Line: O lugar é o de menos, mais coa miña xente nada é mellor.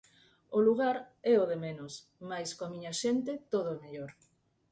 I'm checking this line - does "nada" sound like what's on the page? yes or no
no